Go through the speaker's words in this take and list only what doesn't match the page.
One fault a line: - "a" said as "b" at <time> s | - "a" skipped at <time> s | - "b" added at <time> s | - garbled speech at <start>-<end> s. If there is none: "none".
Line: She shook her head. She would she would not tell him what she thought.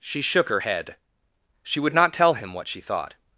- "she would" skipped at 1.9 s